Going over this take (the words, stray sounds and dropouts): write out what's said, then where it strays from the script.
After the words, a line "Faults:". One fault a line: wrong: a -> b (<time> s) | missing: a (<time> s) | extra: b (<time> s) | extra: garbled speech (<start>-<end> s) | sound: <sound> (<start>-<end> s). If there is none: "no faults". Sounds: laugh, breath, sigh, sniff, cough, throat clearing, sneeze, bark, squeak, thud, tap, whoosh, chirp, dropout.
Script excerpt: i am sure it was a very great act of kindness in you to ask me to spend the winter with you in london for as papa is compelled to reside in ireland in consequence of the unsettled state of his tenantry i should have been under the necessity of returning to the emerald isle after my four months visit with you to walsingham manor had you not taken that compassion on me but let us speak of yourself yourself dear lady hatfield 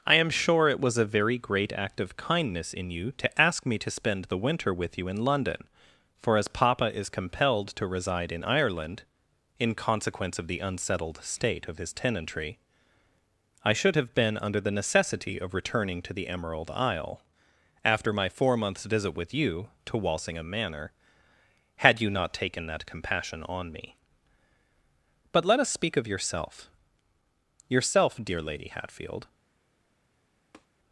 i am sure it was a very great act of kindness in you to ask me to spend the winter with you in london for as papa is compelled to reside in ireland in consequence of the unsettled state of his tenantry i should have been under the necessity of returning to the emerald isle after my four months visit with you to walsingham manor had you not taken that compassion on me but let us speak of yourself yourself dear lady hatfield
Faults:
sound: tap (30.5-30.7 s)